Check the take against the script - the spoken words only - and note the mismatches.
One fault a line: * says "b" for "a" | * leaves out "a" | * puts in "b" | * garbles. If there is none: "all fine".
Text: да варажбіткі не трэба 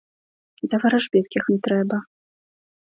all fine